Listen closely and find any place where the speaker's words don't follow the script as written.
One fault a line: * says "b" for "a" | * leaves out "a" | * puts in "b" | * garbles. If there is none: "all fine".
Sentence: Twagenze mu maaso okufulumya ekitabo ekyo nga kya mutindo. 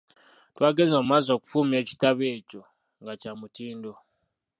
all fine